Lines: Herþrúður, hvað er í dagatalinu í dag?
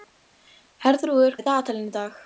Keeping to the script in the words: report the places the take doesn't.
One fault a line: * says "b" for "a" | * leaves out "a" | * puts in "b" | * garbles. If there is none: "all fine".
* leaves out "hvað"